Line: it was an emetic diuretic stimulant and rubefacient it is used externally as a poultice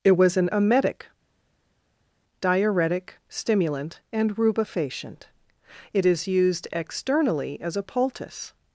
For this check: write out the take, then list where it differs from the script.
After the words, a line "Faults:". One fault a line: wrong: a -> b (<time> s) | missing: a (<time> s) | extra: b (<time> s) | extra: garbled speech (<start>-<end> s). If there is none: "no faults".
it was an emetic diuretic stimulant and rubefacient it is used externally as a poultice
Faults:
no faults